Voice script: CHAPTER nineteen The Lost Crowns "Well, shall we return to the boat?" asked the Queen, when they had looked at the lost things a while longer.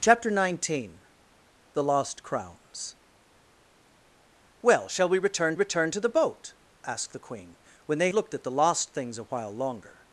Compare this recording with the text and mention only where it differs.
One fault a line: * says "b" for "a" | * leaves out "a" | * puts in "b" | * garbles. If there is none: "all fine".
* puts in "return"
* leaves out "had"